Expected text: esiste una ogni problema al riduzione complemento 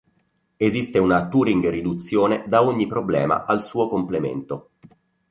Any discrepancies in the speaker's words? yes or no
yes